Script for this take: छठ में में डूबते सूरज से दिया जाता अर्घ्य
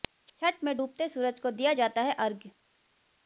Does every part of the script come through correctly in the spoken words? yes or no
no